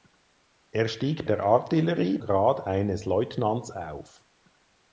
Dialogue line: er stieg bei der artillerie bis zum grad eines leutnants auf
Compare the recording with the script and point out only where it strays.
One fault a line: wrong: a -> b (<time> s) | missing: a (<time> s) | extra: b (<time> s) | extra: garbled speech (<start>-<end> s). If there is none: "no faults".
missing: bei (1.3 s)
missing: bis zum (2.2 s)